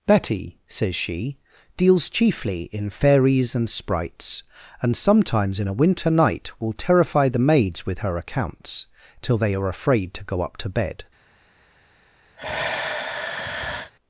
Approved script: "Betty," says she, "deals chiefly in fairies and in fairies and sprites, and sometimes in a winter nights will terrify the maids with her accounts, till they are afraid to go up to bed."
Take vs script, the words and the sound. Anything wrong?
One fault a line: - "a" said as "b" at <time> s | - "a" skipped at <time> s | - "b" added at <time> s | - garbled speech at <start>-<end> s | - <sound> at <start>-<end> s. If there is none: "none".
- "in fairies and" skipped at 3.7 s
- "nights" said as "night" at 6.1 s
- sigh at 12.4-13.9 s